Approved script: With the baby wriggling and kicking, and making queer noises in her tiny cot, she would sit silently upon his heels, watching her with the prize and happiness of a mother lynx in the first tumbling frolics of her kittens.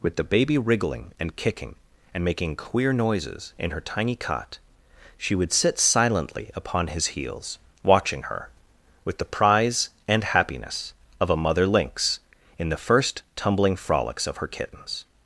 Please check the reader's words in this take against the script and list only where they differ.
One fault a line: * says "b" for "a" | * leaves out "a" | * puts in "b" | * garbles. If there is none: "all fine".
all fine